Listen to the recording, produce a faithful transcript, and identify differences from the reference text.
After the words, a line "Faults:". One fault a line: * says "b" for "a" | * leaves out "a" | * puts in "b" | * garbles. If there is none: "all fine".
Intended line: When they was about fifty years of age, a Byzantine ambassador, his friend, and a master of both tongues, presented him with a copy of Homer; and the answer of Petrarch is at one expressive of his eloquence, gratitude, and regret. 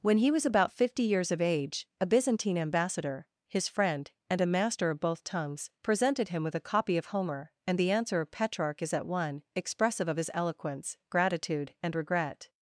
When he was about fifty years of age, a Byzantine ambassador, his friend, and a master of both tongues, presented him with a copy of Homer; and the answer of Petrarch is at one expressive of his eloquence, gratitude, and regret.
Faults:
* says "he" for "they"